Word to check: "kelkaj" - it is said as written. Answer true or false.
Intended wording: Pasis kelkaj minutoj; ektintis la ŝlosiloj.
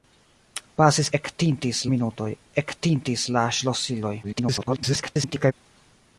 false